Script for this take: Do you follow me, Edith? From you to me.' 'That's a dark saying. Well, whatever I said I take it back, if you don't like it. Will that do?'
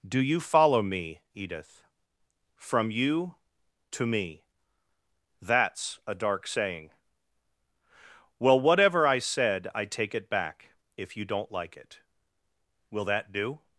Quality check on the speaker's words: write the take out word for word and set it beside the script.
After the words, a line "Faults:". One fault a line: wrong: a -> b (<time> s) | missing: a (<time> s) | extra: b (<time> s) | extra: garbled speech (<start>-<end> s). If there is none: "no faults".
Do you follow me, Edith? From you to me.' 'That's a dark saying. Well, whatever I said I take it back, if you don't like it. Will that do?'
Faults:
no faults